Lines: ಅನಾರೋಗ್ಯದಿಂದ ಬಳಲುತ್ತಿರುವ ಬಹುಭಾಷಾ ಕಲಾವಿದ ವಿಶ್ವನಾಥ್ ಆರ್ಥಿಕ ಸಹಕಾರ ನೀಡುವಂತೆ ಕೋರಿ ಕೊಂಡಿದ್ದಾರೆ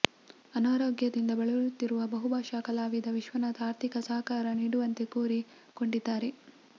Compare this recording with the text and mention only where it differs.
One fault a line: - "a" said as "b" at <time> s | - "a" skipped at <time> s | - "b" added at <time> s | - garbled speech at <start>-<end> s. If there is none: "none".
none